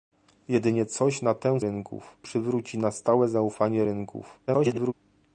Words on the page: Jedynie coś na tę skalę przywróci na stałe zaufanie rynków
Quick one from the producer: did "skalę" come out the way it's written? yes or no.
no